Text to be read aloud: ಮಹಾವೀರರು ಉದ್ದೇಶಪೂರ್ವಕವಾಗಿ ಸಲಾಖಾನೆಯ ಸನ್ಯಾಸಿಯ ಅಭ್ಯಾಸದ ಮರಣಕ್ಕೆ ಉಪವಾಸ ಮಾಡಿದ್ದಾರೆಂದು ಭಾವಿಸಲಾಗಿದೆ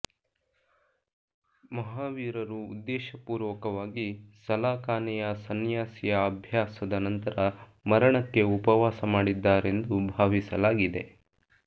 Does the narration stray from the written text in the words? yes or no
yes